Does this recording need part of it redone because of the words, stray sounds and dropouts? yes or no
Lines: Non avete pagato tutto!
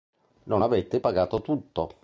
no